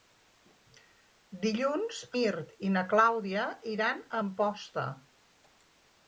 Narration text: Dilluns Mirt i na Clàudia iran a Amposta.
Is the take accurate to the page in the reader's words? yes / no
yes